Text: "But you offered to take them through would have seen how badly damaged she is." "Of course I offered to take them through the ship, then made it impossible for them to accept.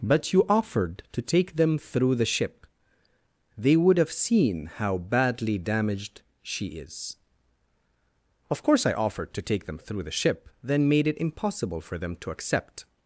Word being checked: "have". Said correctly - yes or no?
yes